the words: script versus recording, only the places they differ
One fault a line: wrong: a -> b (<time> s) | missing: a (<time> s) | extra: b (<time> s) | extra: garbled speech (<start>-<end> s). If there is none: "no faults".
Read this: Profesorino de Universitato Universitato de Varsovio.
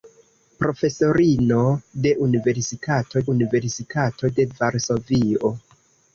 no faults